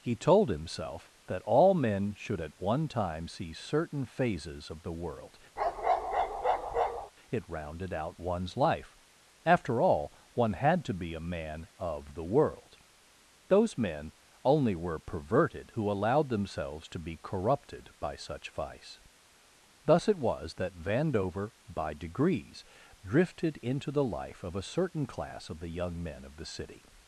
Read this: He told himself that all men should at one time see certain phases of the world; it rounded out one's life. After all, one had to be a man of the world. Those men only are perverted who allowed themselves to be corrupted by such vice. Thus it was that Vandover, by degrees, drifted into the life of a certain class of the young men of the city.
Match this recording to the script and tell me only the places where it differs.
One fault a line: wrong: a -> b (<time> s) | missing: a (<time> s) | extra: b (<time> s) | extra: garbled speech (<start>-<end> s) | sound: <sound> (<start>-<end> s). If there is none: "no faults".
sound: bark (5.6-7.1 s)
wrong: are -> were (14.8 s)